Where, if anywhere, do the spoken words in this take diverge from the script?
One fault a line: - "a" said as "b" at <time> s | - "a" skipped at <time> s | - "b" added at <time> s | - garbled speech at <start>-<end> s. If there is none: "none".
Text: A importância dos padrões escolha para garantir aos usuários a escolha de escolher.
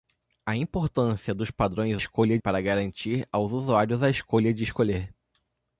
none